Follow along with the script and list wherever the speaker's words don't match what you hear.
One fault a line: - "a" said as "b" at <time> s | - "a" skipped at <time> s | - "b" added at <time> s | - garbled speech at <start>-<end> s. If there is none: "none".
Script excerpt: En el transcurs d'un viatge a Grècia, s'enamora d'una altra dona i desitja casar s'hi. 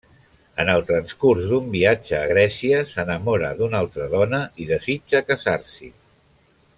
none